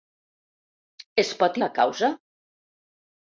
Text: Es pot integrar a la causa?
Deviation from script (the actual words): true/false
true